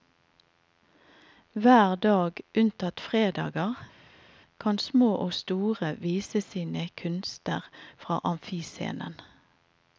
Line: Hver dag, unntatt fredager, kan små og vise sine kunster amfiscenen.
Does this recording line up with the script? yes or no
no